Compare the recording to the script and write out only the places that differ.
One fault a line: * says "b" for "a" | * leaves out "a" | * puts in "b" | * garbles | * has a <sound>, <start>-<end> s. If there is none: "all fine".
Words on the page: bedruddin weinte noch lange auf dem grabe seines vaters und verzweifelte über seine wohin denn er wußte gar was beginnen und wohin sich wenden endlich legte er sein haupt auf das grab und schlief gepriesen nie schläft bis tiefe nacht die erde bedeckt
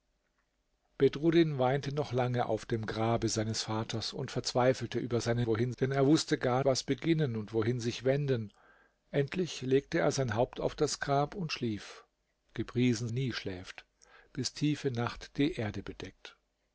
all fine